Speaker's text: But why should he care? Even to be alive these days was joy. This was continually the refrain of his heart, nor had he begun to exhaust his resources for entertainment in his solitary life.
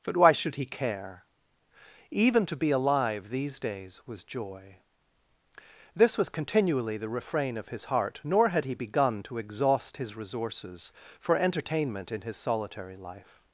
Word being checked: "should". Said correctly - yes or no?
yes